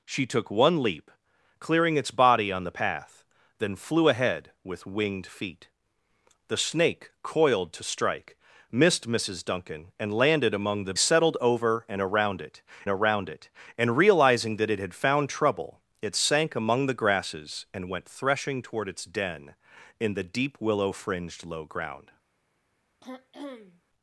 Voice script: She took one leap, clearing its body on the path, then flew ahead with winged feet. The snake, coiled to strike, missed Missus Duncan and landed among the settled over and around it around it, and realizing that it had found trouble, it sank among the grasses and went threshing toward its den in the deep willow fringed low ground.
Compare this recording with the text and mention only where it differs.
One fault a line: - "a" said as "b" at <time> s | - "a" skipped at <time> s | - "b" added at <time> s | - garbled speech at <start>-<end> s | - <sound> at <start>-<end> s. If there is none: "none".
- throat clearing at 23.0-23.8 s